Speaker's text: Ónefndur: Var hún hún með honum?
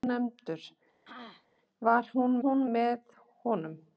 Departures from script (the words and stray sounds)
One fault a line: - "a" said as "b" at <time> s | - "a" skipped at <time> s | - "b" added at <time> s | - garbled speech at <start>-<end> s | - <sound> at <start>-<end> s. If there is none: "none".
- throat clearing at 1.0-1.5 s